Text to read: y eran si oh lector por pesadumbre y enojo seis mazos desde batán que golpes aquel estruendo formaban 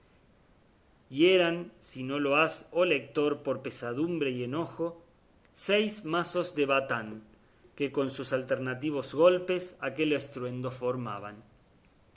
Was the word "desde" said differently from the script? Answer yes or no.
yes